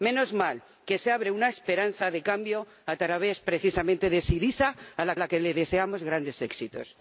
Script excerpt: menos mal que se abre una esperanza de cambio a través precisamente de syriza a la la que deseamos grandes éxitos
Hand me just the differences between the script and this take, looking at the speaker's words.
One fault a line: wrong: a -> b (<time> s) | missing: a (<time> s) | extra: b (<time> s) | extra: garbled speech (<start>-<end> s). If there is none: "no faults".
no faults